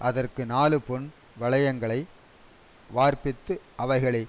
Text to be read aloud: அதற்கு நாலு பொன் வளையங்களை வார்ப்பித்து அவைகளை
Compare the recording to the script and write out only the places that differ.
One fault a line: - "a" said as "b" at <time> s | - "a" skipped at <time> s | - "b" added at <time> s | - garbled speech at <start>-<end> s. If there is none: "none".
none